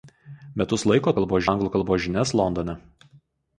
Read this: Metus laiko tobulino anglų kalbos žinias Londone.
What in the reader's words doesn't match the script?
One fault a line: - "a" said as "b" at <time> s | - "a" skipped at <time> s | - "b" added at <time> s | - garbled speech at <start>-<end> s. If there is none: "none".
- "tobulino" said as "kalbos" at 1.2 s